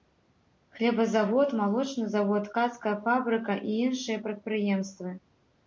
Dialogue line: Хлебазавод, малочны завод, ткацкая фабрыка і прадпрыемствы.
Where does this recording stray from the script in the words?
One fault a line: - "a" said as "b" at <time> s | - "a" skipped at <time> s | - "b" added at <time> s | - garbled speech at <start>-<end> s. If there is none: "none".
- "іншыя" added at 3.9 s